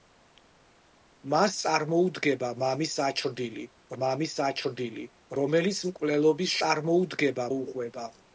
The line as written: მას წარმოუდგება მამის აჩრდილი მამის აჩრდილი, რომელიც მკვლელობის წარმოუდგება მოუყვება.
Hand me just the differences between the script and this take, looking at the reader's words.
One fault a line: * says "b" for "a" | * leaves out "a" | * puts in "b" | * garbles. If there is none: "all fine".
all fine